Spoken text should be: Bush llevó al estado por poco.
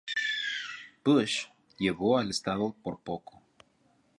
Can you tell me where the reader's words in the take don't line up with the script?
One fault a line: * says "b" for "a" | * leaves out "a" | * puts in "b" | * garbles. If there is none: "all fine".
all fine